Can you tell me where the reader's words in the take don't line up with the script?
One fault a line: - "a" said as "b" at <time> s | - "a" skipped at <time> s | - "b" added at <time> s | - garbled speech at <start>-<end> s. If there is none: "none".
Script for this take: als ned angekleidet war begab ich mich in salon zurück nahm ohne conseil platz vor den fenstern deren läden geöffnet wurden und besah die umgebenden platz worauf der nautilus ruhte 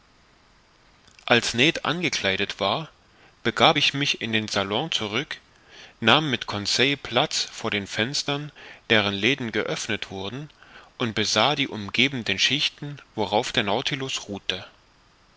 - "den" added at 4.3 s
- "ohne" said as "mit" at 6.3 s
- "platz" said as "schichten" at 12.4 s